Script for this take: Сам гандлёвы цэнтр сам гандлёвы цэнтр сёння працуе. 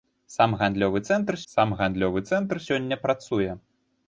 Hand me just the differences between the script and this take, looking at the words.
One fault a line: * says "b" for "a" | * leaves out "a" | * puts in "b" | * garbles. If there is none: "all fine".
all fine